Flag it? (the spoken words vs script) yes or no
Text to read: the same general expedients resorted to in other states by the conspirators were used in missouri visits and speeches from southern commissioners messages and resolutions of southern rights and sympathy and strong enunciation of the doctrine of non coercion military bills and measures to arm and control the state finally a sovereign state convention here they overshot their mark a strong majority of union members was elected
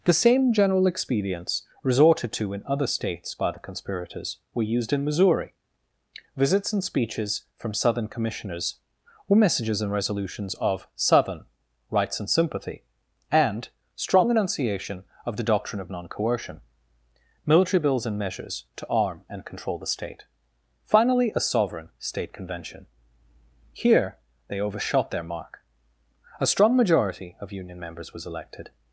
yes